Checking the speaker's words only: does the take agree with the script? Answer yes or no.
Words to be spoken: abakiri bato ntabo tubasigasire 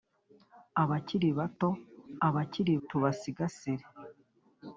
no